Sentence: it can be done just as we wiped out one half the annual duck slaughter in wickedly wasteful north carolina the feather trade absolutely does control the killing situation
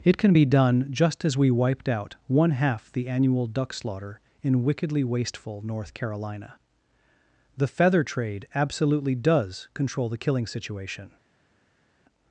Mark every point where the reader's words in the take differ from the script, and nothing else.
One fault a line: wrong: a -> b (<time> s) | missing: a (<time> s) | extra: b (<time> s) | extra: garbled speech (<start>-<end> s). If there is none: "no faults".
no faults